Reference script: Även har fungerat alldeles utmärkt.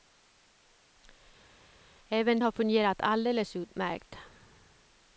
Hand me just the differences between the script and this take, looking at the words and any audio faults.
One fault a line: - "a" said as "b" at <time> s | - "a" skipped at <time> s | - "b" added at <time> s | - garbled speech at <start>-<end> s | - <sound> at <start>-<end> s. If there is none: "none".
none